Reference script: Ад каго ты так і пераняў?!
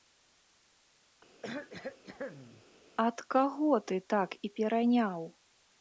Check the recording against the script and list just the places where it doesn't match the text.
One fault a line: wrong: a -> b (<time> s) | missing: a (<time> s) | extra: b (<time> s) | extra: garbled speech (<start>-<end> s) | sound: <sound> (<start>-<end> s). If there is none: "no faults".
sound: cough (1.4-2.6 s)